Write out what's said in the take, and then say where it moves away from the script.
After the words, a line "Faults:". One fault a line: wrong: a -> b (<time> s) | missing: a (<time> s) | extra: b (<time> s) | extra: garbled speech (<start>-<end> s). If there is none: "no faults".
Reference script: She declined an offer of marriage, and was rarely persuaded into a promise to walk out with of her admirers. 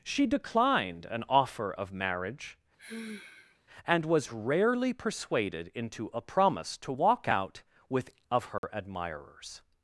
She declined an offer of marriage, and was rarely persuaded into a promise to walk out with of her admirers.
Faults:
no faults